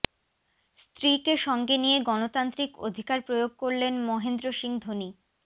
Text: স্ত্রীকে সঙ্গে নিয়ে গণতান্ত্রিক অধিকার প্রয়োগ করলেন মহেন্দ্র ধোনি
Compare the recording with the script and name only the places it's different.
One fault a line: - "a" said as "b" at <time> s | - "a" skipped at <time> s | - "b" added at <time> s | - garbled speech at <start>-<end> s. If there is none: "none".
- "সিং" added at 4.5 s